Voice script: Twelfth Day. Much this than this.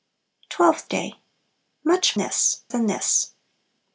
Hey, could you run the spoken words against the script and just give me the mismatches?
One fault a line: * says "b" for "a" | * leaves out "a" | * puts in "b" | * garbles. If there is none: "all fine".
all fine